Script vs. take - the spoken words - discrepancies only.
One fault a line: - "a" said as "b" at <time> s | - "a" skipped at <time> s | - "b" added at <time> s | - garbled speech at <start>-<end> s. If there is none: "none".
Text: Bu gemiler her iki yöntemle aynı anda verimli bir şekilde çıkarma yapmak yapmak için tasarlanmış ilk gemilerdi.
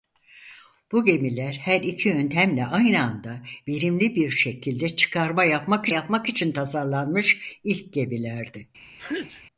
none